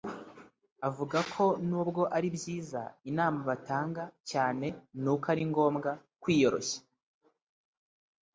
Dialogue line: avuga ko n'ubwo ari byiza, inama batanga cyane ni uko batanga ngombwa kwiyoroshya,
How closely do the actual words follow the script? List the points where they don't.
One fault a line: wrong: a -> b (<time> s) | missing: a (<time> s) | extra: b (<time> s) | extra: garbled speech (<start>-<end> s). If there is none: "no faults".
wrong: batanga -> ari (5.3 s)